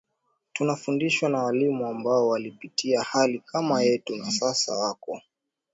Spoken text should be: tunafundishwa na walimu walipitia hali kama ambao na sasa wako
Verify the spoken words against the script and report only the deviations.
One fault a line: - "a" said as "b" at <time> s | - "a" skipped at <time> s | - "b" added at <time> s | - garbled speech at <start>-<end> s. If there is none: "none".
- "ambao" added at 1.9 s
- "ambao" said as "yetu" at 3.8 s